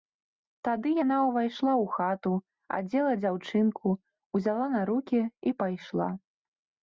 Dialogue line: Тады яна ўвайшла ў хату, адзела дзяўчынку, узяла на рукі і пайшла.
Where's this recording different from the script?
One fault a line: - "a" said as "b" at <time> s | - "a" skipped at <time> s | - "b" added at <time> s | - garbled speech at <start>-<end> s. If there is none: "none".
none